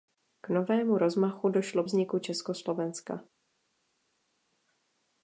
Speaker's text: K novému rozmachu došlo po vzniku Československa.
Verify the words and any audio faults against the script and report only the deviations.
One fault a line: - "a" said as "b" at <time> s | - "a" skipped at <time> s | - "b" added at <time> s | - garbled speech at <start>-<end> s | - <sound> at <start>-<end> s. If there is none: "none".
- "po" skipped at 1.8 s